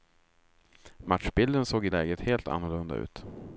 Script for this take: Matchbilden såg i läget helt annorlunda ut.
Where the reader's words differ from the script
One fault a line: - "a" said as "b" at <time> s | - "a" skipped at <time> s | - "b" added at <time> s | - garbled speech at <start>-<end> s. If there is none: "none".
none